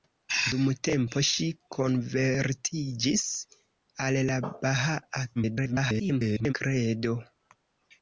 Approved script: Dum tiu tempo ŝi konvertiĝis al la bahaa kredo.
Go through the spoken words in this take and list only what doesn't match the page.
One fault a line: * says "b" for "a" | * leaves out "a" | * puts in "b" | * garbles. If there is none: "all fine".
* leaves out "tiu"
* garbles